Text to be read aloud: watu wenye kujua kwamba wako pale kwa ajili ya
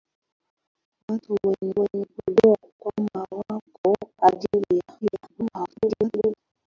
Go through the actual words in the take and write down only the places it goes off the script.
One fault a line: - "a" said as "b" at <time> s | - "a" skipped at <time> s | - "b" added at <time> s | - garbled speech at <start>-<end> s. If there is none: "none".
- "wenye" added at 1.8 s
- "pale kwa" skipped at 4.0 s
- garbled speech at 5.0-6.3 s